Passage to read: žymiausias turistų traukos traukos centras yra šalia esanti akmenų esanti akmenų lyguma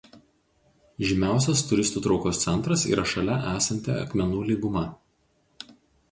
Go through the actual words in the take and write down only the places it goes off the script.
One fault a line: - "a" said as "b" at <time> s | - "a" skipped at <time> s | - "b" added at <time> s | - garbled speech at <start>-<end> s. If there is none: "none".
- "traukos" skipped at 2.4 s
- "esanti akmenų" skipped at 4.4 s